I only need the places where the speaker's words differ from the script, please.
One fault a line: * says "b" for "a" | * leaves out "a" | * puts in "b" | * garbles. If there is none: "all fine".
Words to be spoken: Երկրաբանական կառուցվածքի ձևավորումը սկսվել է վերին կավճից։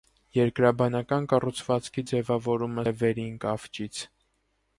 * leaves out "սկսվել"